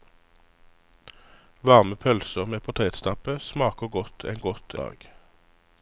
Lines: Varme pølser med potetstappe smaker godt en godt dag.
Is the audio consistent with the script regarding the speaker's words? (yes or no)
yes